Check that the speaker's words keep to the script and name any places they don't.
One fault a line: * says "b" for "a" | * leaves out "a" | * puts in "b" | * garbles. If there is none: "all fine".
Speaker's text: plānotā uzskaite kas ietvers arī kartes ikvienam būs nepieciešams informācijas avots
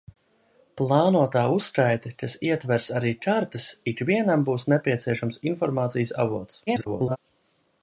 * garbles